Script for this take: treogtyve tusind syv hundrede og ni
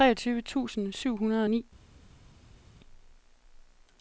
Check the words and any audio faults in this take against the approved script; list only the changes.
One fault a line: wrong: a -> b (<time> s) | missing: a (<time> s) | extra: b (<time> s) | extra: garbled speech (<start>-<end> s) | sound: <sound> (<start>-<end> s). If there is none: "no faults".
no faults